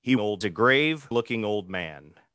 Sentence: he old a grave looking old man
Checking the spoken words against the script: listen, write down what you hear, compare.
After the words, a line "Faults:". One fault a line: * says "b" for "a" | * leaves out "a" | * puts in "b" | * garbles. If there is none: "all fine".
he old a grave looking old man
Faults:
all fine